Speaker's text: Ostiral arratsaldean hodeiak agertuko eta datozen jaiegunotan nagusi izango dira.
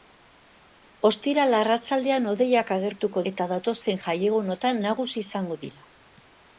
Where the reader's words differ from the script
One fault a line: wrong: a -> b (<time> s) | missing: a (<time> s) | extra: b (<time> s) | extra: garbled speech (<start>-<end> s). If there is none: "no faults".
no faults